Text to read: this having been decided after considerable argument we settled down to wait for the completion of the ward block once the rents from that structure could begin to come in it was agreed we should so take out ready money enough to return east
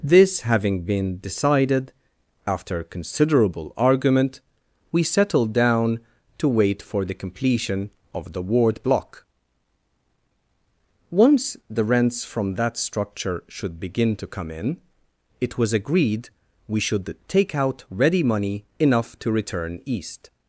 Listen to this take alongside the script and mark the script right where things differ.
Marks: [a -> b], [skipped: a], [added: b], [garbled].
this having been decided after considerable argument we settled down to wait for the completion of the ward block once the rents from that structure [could -> should] begin to come in it was agreed we should [skipped: so] take out ready money enough to return east